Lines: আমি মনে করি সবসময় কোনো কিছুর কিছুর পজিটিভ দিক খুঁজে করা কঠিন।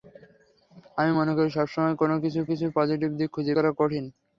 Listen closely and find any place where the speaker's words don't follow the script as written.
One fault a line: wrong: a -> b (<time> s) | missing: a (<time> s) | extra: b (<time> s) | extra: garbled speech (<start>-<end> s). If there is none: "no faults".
no faults